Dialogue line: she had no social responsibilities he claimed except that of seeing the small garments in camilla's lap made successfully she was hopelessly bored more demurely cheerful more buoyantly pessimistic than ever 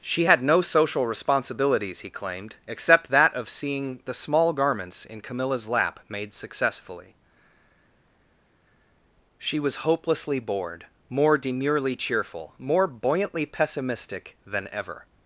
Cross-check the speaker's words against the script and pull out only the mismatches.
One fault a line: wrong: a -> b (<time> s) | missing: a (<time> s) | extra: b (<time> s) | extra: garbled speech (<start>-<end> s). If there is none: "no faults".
no faults